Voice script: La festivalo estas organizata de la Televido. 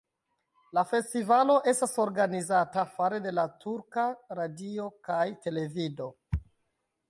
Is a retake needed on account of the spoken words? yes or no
yes